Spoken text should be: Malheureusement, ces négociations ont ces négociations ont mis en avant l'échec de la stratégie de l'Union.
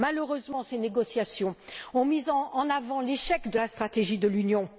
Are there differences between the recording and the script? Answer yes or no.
yes